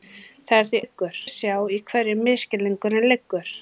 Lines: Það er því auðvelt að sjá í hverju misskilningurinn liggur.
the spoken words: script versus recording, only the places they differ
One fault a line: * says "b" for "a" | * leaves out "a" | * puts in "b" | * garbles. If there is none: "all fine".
* says "liggur" for "auðvelt"